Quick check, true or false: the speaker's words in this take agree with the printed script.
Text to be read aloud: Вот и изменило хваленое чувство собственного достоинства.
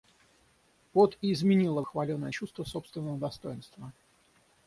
true